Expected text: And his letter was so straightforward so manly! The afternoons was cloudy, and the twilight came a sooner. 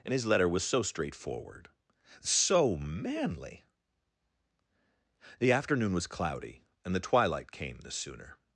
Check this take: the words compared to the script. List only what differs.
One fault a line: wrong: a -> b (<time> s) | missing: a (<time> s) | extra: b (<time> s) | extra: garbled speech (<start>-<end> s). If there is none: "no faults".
wrong: afternoons -> afternoon (5.5 s)
wrong: a -> the (7.8 s)